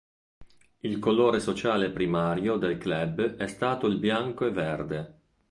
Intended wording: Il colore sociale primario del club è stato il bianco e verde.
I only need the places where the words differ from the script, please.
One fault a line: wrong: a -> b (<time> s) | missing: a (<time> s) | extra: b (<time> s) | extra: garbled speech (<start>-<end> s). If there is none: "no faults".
no faults